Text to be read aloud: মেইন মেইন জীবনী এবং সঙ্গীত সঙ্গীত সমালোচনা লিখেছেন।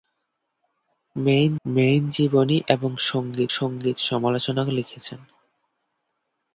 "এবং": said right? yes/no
yes